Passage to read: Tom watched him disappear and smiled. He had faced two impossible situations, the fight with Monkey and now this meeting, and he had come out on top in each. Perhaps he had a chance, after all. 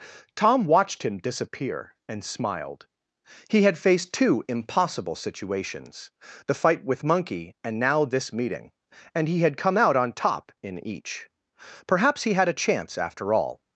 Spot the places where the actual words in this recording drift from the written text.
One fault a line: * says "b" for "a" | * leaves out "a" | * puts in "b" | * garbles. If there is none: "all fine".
all fine